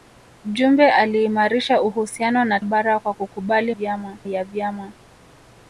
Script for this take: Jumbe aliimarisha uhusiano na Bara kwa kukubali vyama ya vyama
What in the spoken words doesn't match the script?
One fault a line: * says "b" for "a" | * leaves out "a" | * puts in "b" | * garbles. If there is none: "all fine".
all fine